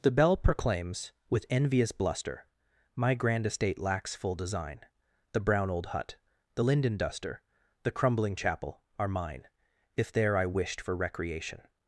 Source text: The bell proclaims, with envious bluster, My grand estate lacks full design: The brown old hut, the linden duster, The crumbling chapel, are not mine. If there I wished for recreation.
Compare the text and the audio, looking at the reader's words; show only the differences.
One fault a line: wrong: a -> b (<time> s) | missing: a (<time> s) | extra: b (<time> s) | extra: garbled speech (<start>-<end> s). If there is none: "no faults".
missing: not (9.1 s)